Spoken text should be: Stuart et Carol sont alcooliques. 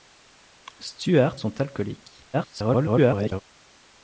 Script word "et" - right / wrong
wrong